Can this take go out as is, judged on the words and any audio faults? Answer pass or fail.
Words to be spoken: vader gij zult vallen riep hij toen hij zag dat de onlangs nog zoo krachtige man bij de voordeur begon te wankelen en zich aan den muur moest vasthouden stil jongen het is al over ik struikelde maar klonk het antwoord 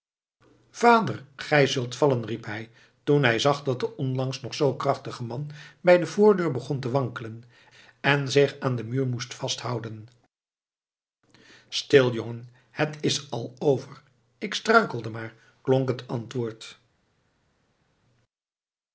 pass